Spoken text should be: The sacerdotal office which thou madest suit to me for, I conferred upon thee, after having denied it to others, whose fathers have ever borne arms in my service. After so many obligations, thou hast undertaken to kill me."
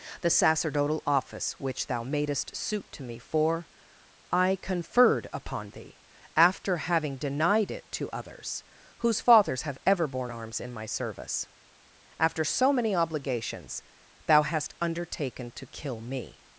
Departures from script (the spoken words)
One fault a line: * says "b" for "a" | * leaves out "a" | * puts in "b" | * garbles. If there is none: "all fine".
all fine